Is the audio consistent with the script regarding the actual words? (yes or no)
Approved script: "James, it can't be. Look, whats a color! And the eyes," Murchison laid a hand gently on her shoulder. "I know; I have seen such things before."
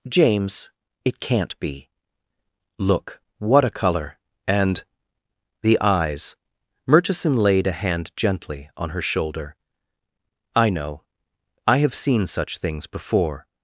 no